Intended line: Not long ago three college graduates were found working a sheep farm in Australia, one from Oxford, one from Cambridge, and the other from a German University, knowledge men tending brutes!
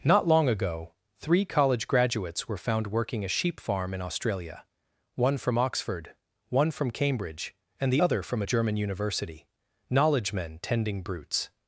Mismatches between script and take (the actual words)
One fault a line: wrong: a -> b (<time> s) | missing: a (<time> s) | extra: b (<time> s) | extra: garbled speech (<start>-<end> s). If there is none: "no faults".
no faults